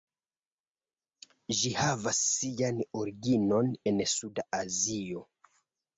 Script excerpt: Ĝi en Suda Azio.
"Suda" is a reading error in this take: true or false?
false